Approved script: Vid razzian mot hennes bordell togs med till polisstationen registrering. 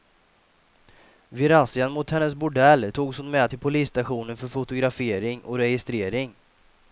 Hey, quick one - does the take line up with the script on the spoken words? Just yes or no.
no